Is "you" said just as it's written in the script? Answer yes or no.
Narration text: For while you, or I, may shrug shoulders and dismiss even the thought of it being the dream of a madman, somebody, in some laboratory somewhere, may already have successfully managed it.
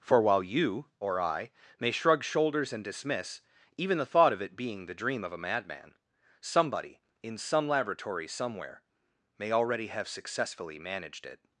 yes